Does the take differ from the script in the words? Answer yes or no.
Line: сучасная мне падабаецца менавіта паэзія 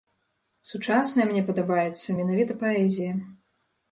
no